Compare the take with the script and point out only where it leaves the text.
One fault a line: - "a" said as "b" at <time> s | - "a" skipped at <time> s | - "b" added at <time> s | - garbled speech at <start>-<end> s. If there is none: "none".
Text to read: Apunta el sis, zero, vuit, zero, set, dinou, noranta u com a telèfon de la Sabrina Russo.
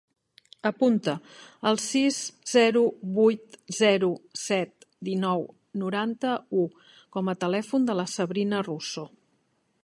none